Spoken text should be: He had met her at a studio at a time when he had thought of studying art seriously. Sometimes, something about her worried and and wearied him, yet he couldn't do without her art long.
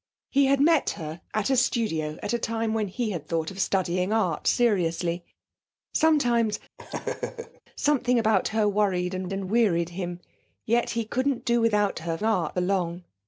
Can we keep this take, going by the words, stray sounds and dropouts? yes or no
no